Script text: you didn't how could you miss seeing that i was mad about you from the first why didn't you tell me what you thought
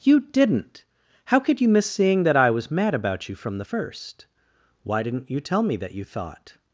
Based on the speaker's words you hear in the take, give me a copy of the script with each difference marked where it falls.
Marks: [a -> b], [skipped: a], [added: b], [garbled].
you didn't how could you miss seeing that i was mad about you from the first why didn't you tell me [what -> that] you thought